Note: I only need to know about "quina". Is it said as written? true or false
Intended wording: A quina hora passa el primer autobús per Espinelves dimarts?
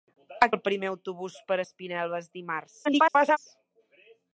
false